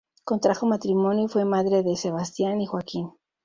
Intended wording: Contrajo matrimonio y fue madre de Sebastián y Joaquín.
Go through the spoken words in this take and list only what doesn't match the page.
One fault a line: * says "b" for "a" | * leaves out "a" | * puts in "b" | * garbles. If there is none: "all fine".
all fine